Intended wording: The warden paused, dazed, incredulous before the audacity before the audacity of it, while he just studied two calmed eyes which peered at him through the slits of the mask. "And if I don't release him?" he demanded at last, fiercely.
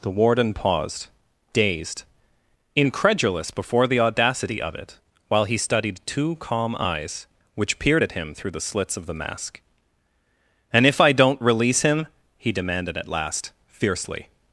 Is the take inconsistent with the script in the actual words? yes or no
yes